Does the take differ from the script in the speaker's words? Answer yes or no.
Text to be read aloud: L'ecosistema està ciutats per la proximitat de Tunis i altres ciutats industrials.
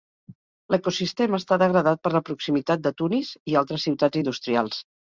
yes